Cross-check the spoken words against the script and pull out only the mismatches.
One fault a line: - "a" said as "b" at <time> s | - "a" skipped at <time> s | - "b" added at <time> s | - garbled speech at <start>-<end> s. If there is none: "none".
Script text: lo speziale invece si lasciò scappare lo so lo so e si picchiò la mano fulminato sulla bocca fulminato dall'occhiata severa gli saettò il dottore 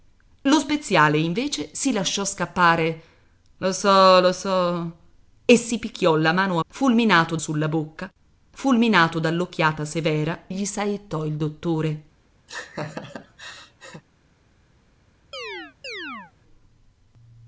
none